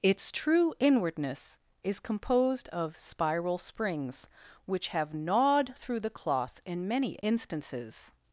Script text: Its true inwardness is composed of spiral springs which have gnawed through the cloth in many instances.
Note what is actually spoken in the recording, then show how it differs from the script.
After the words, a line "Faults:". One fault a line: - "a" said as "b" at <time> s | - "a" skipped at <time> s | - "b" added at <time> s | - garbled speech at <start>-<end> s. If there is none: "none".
Its true inwardness is composed of spiral springs which have gnawed through the cloth in many instances.
Faults:
none